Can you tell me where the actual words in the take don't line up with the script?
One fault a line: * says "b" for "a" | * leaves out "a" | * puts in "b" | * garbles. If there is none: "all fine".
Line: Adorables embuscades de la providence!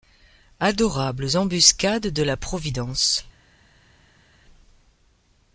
all fine